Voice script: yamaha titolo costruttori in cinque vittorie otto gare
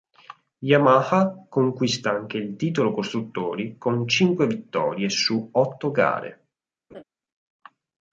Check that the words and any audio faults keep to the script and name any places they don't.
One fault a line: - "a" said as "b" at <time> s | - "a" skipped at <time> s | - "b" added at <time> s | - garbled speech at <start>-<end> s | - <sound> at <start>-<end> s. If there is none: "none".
- "conquista anche il" added at 1.5 s
- "in" said as "con" at 3.8 s
- "su" added at 5.1 s
- laugh at 6.9-7.0 s